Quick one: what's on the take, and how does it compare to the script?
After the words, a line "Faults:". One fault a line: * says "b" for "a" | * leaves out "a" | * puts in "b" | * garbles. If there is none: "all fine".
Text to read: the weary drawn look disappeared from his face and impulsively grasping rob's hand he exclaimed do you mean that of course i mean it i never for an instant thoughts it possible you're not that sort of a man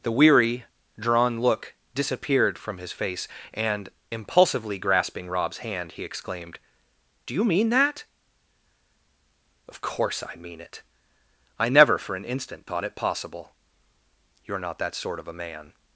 the weary drawn look disappeared from his face and impulsively grasping rob's hand he exclaimed do you mean that of course i mean it i never for an instant thought it possible you're not that sort of a man
Faults:
* says "thought" for "thoughts"